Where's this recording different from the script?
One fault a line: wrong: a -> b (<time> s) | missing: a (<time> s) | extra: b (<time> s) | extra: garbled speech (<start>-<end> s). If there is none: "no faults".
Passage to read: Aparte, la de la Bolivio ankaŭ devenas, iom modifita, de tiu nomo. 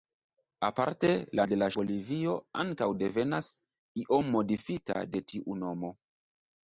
no faults